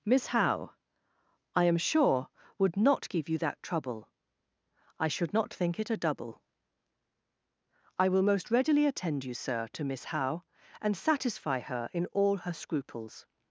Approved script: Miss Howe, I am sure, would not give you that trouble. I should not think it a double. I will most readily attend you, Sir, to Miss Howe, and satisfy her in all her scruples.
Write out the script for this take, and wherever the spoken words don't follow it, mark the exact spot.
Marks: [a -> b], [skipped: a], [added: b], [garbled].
Miss Howe, I am sure, would not give you that trouble. I should not think it a double. I will most readily attend you, Sir, to Miss Howe, and satisfy her in all her scruples.